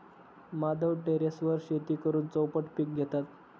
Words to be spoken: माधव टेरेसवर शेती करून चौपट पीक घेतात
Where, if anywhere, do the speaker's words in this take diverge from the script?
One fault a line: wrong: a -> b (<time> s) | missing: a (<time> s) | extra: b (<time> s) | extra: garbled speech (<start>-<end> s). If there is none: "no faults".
no faults